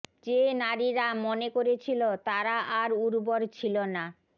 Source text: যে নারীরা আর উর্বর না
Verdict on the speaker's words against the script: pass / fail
fail